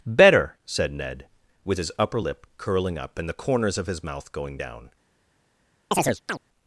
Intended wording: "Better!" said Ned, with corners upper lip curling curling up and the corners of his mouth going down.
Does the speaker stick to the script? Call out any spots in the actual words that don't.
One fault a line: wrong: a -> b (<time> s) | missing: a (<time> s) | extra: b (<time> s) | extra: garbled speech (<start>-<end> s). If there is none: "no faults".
wrong: corners -> his (1.8 s)
missing: curling (3.0 s)